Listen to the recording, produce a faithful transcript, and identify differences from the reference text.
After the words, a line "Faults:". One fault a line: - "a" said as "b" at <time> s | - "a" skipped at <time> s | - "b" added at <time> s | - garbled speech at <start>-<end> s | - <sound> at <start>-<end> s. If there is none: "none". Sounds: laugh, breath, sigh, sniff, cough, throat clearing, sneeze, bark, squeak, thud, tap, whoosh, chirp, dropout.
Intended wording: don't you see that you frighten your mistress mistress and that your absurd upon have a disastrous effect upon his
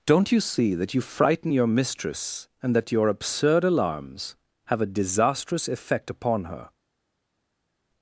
don't you see that you frighten your mistress and that your absurd alarms have a disastrous effect upon her
Faults:
- "mistress" skipped at 2.5 s
- "upon" said as "alarms" at 3.6 s
- "his" said as "her" at 6.4 s